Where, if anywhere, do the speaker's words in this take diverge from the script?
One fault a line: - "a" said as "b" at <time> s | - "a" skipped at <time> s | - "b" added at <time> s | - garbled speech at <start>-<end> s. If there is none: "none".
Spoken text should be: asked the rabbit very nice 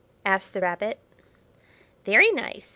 none